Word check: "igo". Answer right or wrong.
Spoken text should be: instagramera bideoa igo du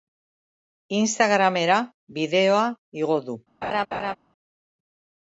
right